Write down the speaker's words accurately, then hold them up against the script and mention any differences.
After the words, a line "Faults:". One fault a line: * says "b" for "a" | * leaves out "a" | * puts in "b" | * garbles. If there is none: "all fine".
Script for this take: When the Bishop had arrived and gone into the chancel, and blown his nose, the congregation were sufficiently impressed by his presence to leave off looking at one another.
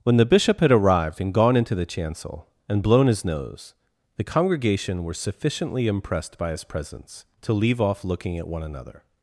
When the Bishop had arrived and gone into the chancel, and blown his nose, the congregation were sufficiently impressed by his presence to leave off looking at one another.
Faults:
all fine